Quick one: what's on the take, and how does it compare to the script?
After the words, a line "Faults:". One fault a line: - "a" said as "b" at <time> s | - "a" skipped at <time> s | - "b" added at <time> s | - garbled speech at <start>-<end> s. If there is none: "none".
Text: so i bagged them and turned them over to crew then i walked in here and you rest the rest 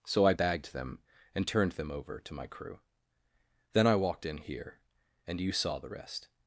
so i bagged them and turned them over to my crew then i walked in here and you saw the rest
Faults:
- "my" added at 2.3 s
- "rest" said as "saw" at 5.5 s